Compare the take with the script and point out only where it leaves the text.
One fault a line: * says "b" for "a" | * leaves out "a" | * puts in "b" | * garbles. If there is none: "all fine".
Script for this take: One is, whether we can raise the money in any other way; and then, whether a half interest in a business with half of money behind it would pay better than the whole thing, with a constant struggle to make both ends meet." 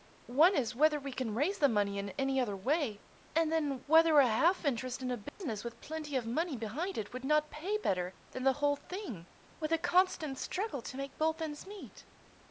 * says "plenty" for "half"
* puts in "not"